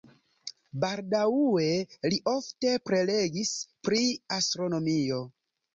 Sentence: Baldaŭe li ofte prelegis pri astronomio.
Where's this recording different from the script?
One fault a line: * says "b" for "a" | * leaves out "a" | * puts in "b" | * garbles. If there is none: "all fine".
all fine